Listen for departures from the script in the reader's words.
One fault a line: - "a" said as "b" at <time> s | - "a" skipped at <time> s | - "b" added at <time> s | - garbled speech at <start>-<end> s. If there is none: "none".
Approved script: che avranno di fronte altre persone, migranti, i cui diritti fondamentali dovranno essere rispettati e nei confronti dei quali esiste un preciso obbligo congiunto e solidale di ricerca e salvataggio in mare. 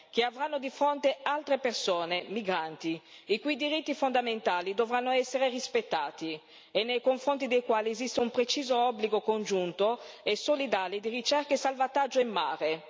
none